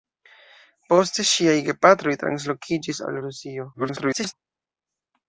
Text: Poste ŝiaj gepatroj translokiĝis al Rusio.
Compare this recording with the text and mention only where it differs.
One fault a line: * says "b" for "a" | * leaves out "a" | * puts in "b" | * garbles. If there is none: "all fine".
* garbles